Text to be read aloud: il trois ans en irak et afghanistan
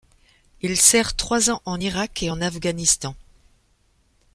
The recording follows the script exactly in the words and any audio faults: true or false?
false